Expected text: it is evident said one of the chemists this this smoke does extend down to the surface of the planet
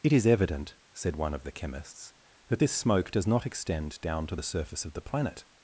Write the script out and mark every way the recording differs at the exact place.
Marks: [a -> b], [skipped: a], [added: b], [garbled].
it is evident said one of the chemists [this -> that] this smoke does [added: not] extend down to the surface of the planet